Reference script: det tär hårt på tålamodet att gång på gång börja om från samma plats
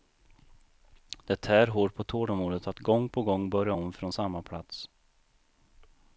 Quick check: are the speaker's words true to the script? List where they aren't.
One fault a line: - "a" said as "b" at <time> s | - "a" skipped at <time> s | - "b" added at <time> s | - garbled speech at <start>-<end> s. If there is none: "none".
none